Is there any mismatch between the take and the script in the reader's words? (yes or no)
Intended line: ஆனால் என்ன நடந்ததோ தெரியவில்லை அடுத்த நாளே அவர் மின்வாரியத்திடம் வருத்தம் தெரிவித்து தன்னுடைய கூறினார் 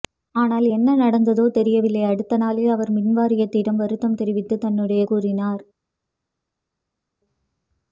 no